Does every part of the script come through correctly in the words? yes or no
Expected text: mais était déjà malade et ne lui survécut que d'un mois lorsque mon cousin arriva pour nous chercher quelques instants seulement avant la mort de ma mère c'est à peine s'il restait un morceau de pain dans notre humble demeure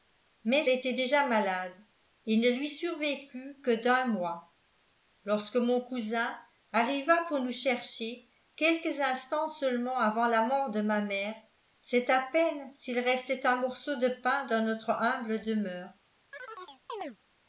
yes